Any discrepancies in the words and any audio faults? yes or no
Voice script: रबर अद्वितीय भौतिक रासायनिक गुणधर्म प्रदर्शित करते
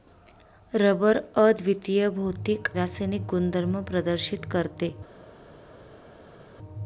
no